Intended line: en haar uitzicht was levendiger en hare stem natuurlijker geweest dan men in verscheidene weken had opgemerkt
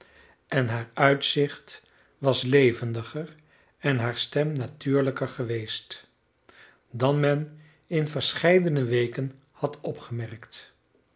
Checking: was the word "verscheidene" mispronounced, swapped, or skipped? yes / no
no